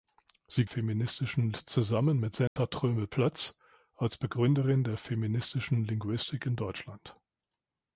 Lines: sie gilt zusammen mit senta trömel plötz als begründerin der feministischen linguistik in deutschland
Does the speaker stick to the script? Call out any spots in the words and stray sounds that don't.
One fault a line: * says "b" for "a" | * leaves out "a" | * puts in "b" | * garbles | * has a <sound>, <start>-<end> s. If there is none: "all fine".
* says "feministischen" for "gilt"
* has a dropout, 2.5-2.6 s